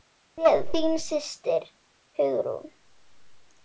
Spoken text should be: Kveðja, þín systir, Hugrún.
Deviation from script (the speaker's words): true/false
false